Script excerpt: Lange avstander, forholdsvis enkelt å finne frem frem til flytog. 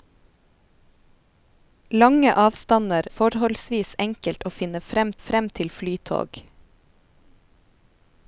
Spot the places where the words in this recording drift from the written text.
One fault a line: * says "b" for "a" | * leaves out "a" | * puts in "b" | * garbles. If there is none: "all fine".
all fine